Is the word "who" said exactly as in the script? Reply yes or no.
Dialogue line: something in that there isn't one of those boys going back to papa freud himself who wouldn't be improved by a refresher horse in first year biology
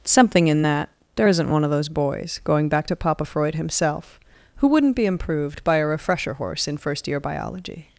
yes